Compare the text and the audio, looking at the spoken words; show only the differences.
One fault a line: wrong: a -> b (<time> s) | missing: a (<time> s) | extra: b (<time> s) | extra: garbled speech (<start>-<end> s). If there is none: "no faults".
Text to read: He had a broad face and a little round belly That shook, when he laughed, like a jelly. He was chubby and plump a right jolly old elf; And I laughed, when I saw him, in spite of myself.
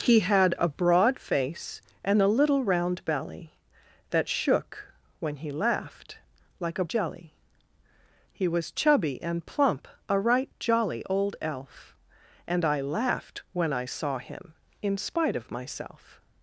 no faults